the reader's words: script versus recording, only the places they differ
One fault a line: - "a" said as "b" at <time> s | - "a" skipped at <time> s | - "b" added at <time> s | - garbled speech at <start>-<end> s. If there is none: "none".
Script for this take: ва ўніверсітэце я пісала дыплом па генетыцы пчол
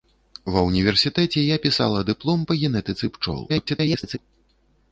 - garbled speech at 3.5-4.2 s